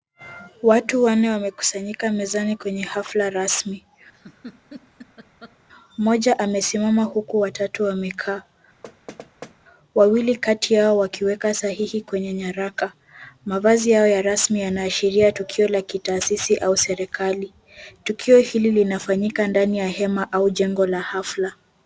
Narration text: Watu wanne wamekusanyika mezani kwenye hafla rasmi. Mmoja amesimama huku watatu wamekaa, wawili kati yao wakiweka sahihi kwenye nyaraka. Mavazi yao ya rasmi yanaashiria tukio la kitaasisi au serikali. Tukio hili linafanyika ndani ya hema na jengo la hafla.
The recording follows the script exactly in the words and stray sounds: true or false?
false